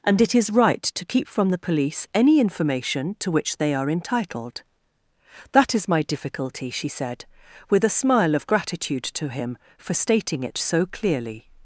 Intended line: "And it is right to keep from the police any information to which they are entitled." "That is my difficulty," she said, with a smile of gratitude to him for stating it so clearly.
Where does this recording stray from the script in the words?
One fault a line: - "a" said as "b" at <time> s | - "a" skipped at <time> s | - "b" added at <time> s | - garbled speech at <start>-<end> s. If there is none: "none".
none